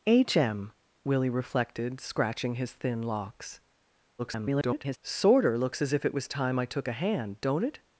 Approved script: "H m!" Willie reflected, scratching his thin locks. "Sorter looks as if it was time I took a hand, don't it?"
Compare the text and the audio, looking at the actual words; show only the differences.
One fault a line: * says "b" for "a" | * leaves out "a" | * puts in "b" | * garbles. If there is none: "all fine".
* garbles